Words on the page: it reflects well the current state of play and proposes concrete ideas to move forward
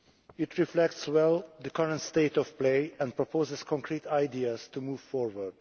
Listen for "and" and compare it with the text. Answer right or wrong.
right